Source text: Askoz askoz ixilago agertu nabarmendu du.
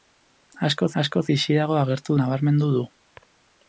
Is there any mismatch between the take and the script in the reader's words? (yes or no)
no